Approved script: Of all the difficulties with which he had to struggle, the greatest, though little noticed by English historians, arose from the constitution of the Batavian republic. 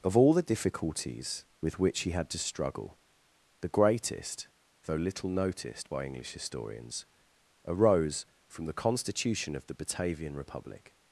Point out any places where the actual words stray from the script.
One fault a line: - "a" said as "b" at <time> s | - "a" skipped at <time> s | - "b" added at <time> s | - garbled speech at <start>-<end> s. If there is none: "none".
none